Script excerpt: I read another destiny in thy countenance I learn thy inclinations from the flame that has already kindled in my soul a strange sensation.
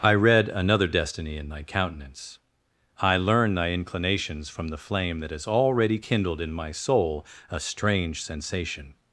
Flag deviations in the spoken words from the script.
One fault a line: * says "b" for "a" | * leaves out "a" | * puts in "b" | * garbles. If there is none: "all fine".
all fine